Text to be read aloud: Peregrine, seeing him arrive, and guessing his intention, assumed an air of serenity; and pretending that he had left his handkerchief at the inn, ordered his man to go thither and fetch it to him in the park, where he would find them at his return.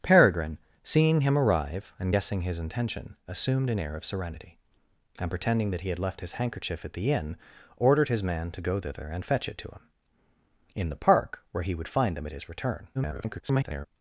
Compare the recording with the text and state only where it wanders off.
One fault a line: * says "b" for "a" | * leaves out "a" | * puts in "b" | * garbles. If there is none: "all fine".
* garbles